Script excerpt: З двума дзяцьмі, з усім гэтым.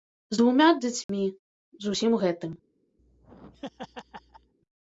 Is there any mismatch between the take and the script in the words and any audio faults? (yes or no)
yes